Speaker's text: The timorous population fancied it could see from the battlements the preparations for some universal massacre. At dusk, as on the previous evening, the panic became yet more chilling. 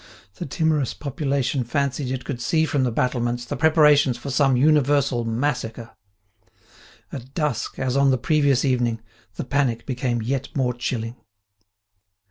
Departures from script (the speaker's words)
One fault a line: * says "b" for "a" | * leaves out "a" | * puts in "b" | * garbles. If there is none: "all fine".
all fine